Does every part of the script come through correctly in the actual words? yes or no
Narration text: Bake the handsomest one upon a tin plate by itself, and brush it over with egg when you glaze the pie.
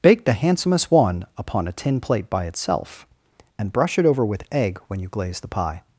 yes